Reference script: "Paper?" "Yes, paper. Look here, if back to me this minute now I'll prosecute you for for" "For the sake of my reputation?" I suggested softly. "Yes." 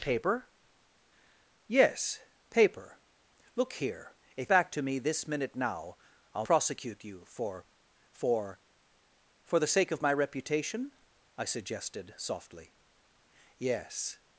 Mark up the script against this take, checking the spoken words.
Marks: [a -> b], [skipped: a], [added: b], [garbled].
"Paper?" "Yes, paper. Look here, if back to me this minute now I'll prosecute you for for" "For the sake of my reputation?" I suggested softly. "Yes."